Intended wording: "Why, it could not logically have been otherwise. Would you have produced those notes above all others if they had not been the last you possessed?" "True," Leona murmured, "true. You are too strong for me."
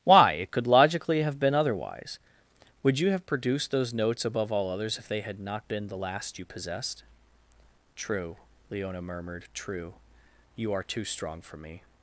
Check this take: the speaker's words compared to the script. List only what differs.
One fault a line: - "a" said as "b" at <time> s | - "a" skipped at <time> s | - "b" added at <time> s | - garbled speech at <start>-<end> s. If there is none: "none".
- "not" skipped at 0.7 s